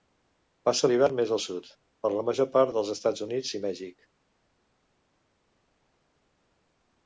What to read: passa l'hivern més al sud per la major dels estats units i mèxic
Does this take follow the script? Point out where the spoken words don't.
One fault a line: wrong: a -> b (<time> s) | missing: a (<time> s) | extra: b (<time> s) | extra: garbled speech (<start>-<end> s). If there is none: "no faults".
extra: part (2.6 s)